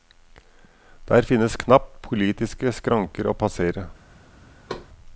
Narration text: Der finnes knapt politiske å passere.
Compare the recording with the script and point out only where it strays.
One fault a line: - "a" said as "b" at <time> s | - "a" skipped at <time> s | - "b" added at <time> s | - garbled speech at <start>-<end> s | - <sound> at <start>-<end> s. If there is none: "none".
- "skranker" added at 2.7 s
- thud at 4.7-4.9 s